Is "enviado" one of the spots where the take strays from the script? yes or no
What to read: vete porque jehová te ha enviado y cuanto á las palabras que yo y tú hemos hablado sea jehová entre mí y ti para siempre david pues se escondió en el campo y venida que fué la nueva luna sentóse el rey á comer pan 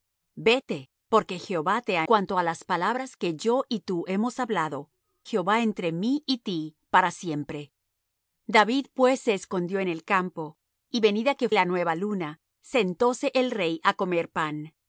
yes